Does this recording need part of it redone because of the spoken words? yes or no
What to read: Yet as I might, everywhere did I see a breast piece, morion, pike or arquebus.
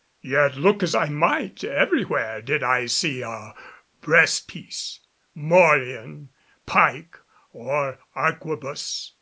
yes